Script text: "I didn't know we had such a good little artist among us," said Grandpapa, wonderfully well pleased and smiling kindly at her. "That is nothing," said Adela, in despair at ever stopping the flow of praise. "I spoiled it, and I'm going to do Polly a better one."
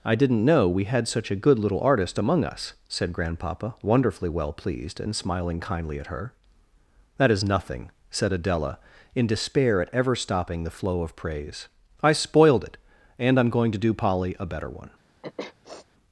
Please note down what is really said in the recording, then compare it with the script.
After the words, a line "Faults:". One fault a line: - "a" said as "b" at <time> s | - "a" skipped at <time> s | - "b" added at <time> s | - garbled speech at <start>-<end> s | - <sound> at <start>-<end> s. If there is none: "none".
"I didn't know we had such a good little artist among us," said Grandpapa, wonderfully well pleased and smiling kindly at her. "That is nothing," said Adela, in despair at ever stopping the flow of praise. "I spoiled it, and I'm going to do Polly a better one."
Faults:
- sniff at 15.2-15.9 s